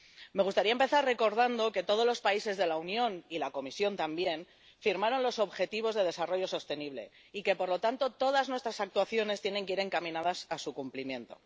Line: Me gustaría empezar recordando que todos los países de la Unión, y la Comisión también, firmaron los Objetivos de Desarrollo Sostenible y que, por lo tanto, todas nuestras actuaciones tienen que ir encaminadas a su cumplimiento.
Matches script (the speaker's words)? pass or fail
pass